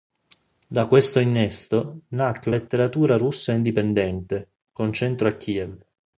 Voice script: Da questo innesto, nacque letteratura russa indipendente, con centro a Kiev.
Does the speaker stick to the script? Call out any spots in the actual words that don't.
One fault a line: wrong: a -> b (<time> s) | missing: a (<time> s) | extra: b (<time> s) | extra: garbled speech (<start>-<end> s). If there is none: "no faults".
no faults